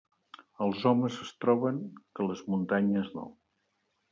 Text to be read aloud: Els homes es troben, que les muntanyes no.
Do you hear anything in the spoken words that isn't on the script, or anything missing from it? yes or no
no